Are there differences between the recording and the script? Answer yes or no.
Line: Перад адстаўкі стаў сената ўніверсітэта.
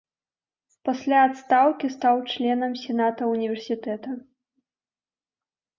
yes